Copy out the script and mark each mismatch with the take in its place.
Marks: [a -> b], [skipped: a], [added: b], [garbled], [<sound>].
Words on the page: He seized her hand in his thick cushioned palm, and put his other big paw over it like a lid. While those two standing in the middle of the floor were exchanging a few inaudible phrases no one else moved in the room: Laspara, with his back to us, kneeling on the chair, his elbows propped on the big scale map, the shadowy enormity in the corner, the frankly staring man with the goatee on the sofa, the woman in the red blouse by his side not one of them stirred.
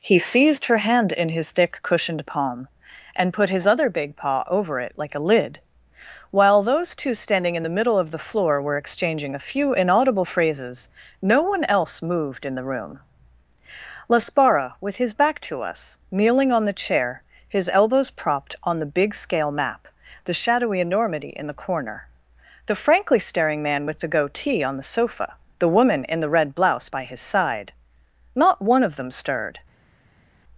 He seized her hand in his thick cushioned palm, and put his other big paw over it like a lid. While those two standing in the middle of the floor were exchanging a few inaudible phrases no one else moved in the room: Laspara, with his back to us, kneeling on the chair, his elbows propped on the big scale map, the shadowy enormity in the corner, the frankly staring man with the goatee on the sofa, the woman in the red blouse by his side not one of them stirred.